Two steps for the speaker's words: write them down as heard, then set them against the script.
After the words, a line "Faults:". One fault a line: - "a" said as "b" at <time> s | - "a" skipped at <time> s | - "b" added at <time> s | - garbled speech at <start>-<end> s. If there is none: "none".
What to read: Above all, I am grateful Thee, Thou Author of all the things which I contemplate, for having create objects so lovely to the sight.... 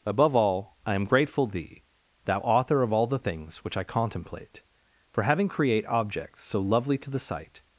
Above all, I am grateful Thee, Thou Author of all the things which I contemplate, for having create objects so lovely to the sight....
Faults:
none